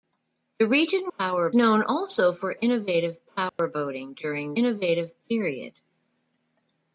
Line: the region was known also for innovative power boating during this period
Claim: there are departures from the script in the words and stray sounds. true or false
true